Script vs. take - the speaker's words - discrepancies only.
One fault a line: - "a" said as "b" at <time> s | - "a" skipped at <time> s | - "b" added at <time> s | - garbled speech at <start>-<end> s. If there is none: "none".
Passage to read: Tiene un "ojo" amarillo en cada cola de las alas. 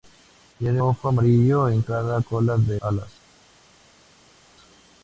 - "un" skipped at 0.8 s
- "las" skipped at 2.8 s